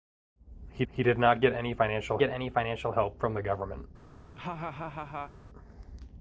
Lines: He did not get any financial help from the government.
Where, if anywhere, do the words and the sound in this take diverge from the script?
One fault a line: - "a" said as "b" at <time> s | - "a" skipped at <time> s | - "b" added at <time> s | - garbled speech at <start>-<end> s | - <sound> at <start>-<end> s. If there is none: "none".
- "he" added at 0.9 s
- "get any financial" added at 2.2 s
- laugh at 4.4-5.3 s